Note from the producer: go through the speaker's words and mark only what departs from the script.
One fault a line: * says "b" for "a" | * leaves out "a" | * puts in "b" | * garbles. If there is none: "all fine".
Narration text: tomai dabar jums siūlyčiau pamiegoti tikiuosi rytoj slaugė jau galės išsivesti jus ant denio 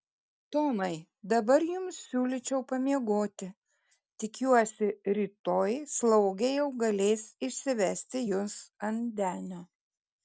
all fine